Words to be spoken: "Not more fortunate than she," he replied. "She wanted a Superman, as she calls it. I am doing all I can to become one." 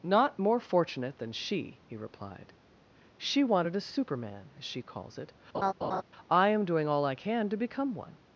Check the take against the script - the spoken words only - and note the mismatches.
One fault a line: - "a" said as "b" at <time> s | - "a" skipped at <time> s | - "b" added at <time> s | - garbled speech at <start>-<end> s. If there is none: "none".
none